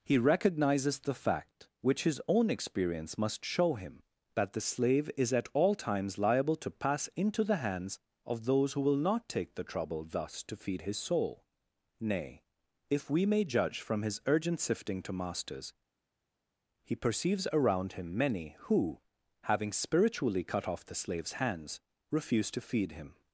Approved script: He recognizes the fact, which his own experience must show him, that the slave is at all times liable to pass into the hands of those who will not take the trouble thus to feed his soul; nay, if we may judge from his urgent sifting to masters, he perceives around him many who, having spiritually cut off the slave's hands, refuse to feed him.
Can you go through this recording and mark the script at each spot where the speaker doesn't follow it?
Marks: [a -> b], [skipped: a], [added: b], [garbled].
He recognizes the fact, which his own experience must show him, that the slave is at all times liable to pass into the hands of those who will not take the trouble thus to feed his soul; nay, if we may judge from his urgent sifting to masters, he perceives around him many who, having spiritually cut off the slave's hands, refuse to feed him.